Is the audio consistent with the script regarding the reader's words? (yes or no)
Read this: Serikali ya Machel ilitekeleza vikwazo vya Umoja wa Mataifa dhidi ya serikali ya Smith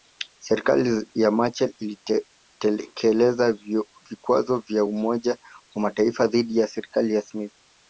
yes